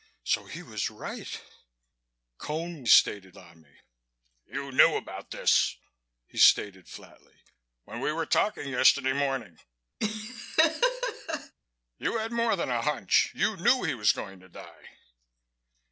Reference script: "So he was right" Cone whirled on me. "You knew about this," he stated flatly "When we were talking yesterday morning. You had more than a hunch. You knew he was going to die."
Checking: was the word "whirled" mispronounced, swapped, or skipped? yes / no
yes